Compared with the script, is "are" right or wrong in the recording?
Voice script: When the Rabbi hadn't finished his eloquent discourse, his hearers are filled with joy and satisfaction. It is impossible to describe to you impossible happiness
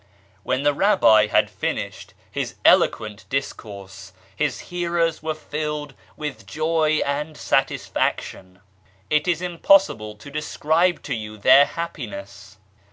wrong